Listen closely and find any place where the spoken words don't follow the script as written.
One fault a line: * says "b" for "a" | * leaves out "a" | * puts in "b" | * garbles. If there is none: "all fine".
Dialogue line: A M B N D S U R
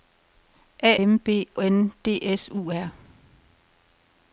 all fine